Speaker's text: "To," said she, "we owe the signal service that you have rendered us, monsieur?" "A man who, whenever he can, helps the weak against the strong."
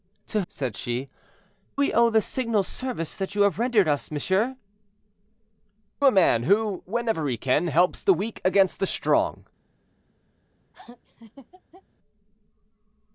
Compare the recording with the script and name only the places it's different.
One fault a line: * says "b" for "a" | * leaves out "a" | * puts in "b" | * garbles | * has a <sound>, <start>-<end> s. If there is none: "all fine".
* has a laugh, 10.7-11.8 s